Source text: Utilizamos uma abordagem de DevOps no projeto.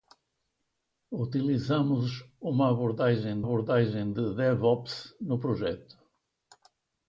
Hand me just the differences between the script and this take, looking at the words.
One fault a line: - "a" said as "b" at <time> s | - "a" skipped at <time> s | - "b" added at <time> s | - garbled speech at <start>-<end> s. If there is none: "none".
- "abordagem" added at 3.4 s